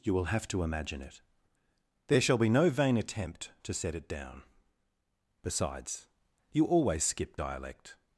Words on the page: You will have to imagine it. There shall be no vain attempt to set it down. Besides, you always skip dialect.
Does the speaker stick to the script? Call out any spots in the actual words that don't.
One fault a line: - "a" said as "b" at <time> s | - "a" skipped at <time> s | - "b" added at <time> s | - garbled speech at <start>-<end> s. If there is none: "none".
none